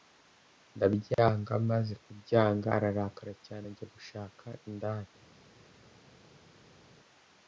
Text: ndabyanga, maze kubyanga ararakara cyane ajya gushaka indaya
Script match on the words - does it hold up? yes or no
yes